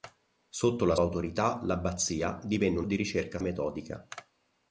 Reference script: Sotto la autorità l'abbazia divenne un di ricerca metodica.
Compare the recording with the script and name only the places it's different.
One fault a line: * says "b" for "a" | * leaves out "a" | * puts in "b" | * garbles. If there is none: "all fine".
all fine